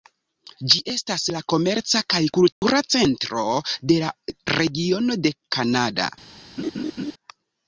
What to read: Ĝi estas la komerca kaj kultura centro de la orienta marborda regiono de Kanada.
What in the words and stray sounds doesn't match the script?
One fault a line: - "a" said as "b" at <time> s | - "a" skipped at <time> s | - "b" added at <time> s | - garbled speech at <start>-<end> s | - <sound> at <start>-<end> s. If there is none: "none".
- dropout at 2.5-2.6 s
- "orienta marborda" skipped at 4.1 s
- laugh at 6.6-7.1 s